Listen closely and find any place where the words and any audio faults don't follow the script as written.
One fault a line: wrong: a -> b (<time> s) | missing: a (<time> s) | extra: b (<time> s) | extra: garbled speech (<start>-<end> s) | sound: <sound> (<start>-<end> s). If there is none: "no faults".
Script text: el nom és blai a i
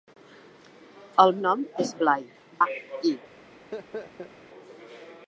sound: laugh (3.7-4.3 s)